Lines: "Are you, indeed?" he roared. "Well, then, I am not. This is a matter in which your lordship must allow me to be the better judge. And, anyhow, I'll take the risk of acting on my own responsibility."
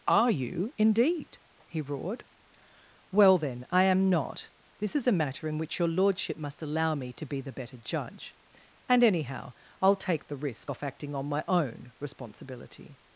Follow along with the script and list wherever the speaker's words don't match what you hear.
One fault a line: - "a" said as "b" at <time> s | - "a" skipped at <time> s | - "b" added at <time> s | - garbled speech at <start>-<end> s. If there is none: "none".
- "of" said as "off" at 10.7 s